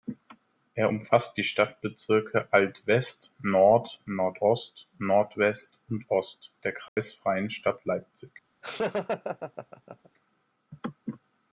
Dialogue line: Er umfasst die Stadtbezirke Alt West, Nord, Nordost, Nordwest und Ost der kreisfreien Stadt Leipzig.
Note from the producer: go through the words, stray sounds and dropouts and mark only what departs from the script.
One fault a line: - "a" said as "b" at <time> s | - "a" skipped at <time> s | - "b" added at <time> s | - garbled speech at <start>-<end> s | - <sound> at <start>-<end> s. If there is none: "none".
- dropout at 6.9-7.0 s
- laugh at 8.6-10.1 s